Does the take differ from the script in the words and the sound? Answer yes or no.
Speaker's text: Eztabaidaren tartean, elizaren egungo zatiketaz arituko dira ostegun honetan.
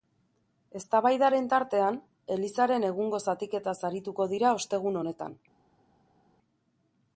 no